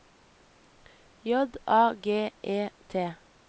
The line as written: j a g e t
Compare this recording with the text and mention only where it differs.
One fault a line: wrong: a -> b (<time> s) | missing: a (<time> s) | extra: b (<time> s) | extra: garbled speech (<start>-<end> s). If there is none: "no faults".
no faults